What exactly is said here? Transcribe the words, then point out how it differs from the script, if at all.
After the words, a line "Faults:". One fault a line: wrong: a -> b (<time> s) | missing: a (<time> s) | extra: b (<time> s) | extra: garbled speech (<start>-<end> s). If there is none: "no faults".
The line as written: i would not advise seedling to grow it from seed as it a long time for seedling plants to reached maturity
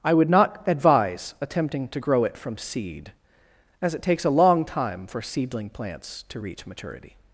i would not advise attempting to grow it from seed as it takes a long time for seedling plants to reach maturity
Faults:
wrong: seedling -> attempting (1.4 s)
extra: takes (4.0 s)
wrong: reached -> reach (6.4 s)